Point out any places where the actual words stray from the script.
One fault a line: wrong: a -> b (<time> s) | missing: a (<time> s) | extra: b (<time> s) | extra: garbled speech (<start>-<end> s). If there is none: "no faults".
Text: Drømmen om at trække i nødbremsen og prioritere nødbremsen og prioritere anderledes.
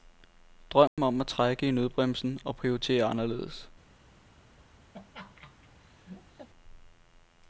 missing: nødbremsen og prioritere (3.0 s)